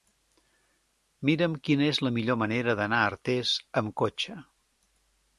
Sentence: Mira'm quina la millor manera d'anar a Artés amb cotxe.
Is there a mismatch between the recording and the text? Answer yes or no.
yes